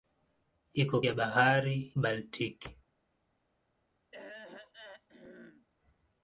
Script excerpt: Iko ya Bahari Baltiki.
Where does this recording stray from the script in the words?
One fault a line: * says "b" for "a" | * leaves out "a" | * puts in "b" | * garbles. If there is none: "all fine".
all fine